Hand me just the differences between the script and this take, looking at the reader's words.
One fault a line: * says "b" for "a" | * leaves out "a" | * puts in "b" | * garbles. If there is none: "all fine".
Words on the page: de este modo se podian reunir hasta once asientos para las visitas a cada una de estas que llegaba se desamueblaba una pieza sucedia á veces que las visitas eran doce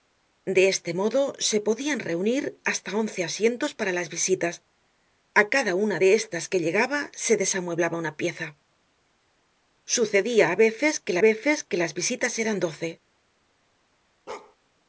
* puts in "veces que"